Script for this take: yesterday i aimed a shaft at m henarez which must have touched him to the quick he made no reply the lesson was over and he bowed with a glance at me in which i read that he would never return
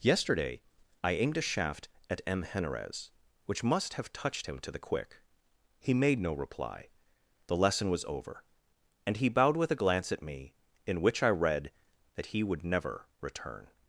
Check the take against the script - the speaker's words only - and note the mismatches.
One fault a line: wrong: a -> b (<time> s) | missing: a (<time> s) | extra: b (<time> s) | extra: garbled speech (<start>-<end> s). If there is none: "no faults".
no faults